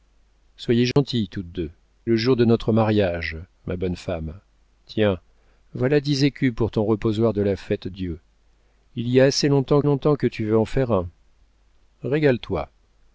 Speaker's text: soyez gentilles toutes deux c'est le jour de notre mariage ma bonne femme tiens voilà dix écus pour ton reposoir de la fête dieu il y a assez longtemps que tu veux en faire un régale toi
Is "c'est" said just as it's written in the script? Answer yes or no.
no